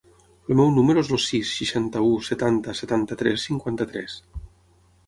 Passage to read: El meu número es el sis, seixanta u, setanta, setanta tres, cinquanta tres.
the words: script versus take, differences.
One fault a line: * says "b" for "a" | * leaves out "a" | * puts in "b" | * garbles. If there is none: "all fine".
all fine